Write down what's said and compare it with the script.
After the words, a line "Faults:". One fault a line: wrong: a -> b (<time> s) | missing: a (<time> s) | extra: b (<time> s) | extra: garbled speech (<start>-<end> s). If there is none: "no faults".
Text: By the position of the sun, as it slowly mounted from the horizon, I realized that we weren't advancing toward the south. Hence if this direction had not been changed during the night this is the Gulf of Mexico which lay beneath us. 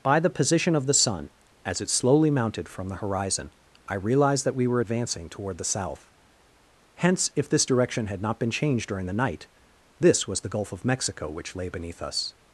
By the position of the sun, as it slowly mounted from the horizon, I realized that we were advancing toward the south. Hence if this direction had not been changed during the night this was the Gulf of Mexico which lay beneath us.
Faults:
wrong: weren't -> were (4.7 s)
wrong: is -> was (10.3 s)